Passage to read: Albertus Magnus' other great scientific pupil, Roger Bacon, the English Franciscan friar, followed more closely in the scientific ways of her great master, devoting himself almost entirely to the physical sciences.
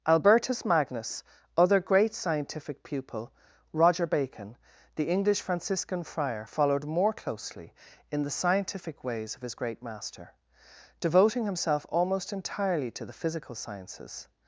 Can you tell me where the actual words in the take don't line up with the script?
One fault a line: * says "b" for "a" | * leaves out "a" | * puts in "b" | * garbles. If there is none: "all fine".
* says "his" for "her"